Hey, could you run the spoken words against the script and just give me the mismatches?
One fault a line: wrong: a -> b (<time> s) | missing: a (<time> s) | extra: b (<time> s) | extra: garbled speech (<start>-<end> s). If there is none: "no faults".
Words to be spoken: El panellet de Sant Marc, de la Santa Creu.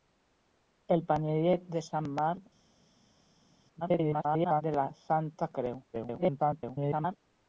extra: garbled speech (3.8-4.6 s)
extra: garbled speech (5.9-7.2 s)